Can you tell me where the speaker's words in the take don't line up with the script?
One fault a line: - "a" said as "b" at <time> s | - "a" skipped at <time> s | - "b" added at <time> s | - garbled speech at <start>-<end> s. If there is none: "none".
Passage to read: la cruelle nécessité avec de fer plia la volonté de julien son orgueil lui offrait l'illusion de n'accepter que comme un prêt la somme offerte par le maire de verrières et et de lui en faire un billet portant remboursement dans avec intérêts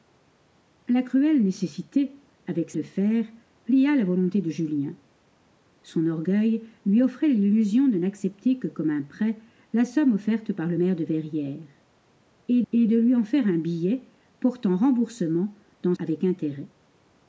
none